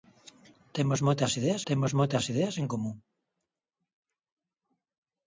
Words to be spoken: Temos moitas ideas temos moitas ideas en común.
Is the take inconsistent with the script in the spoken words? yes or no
no